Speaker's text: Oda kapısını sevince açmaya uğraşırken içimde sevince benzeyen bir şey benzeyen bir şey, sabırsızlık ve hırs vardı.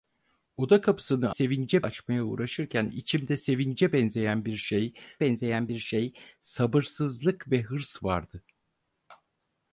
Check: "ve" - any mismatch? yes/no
no